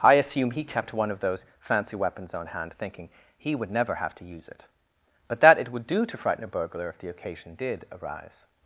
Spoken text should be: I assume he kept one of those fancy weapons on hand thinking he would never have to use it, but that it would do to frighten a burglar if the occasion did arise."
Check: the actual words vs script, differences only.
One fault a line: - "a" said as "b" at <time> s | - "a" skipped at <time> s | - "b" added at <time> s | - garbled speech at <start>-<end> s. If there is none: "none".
none